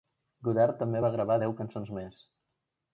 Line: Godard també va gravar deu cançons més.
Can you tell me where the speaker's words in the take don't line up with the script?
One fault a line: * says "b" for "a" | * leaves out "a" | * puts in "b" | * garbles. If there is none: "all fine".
all fine